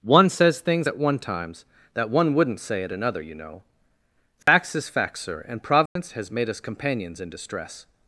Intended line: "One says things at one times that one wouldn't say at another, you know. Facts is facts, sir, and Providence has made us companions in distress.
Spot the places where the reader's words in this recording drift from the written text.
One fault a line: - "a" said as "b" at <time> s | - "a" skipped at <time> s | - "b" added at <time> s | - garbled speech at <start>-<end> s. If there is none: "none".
none